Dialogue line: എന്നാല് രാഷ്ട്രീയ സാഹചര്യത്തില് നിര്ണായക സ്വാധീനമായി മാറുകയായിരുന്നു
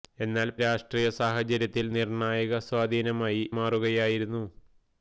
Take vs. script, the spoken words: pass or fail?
pass